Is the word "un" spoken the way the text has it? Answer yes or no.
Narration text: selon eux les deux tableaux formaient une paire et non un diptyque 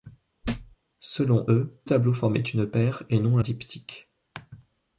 no